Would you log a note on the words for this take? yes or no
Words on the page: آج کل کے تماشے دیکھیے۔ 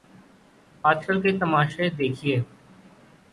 no